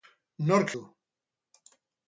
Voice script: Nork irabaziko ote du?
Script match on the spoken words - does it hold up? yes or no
no